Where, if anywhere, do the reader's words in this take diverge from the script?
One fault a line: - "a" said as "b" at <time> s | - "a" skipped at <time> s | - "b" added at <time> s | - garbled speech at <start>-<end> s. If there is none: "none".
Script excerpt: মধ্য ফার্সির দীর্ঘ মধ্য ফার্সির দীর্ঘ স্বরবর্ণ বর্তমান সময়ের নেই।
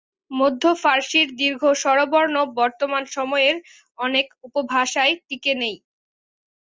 - "মধ্য ফার্সির দীর্ঘ স্বরবর্ণ বর্তমান সময়ের" said as "স্বরবর্ণ বর্তমান সময়ের অনেক উপভাষায় টিকে" at 1.8 s